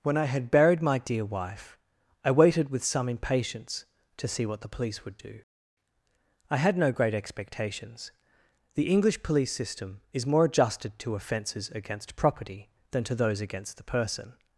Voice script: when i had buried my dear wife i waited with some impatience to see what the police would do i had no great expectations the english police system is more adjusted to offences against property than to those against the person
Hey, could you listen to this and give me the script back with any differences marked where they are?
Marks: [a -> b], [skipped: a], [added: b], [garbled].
when i had buried my dear wife i waited with some impatience to see what the police would do i had no great expectations the english police system is more adjusted to offences against property than to those against the person